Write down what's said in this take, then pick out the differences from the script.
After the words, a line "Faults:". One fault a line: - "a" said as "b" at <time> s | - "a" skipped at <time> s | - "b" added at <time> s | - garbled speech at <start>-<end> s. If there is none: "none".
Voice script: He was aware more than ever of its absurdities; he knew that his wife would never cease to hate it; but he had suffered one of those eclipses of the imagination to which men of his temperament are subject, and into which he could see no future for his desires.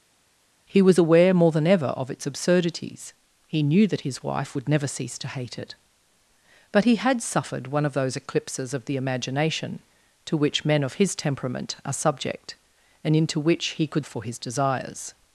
He was aware more than ever of its absurdities; he knew that his wife would never cease to hate it; but he had suffered one of those eclipses of the imagination to which men of his temperament are subject, and into which he could for his desires.
Faults:
- "see no future" skipped at 14.1 s